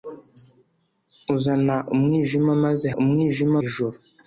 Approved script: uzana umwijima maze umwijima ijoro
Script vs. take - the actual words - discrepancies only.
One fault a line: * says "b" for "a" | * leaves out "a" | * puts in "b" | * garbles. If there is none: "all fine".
all fine